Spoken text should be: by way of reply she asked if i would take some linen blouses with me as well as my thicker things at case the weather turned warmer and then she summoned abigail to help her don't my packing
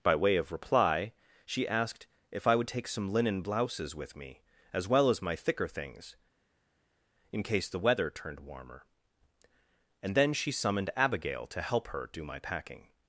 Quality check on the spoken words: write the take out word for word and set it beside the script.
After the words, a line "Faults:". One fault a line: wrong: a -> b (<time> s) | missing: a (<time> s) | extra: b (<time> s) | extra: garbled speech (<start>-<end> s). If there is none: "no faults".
by way of reply she asked if i would take some linen blouses with me as well as my thicker things in case the weather turned warmer and then she summoned abigail to help her do my packing
Faults:
wrong: at -> in (7.3 s)
wrong: don't -> do (12.1 s)